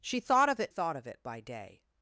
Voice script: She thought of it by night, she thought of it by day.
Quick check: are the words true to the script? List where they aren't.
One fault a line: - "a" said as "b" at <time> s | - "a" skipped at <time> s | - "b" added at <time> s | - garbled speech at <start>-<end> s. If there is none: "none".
- "by night she" skipped at 0.7 s